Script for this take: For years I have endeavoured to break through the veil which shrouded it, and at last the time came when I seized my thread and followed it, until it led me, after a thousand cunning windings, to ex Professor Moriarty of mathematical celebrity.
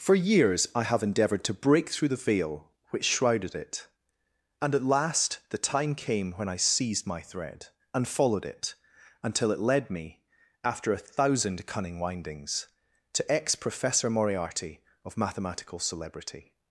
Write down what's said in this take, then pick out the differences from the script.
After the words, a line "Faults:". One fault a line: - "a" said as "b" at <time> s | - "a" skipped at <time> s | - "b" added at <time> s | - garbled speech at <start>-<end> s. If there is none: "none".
For years I have endeavoured to break through the veil which shrouded it, and at last the time came when I seized my thread and followed it, until it led me, after a thousand cunning windings, to ex Professor Moriarty of mathematical celebrity.
Faults:
none